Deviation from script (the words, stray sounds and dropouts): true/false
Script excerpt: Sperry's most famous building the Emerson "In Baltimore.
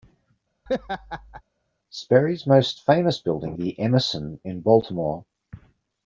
true